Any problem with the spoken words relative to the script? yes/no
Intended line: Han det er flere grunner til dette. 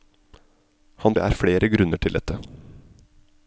no